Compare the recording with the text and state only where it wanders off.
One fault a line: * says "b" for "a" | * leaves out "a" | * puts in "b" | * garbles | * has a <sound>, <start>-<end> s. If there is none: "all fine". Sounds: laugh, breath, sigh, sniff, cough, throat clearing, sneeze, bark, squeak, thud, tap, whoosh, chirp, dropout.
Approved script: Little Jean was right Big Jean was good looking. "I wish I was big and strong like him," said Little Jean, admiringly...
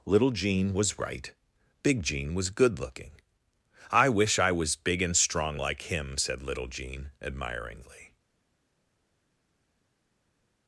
all fine